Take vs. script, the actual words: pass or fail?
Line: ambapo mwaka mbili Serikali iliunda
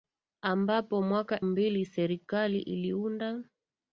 pass